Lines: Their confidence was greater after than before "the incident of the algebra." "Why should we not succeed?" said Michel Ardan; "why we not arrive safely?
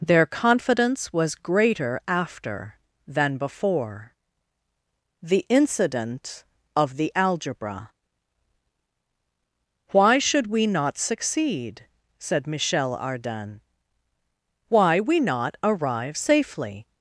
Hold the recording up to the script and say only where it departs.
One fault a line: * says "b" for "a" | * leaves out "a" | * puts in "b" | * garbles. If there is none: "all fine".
all fine